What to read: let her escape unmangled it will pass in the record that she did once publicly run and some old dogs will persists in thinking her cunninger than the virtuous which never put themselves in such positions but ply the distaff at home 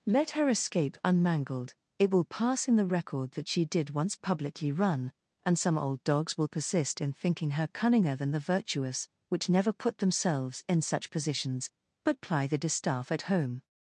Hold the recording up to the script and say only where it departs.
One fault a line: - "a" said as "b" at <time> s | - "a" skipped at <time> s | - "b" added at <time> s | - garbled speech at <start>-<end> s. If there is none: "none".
- "persists" said as "persist" at 6.5 s